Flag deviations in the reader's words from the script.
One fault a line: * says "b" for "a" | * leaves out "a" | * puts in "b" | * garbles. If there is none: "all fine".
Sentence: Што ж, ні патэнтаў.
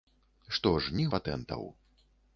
all fine